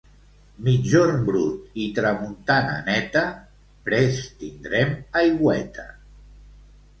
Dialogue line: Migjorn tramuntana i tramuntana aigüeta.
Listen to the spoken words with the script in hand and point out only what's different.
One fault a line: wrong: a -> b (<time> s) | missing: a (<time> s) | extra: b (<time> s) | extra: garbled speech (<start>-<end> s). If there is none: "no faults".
wrong: tramuntana -> brut (1.3 s)
extra: neta prest tindrem (2.9 s)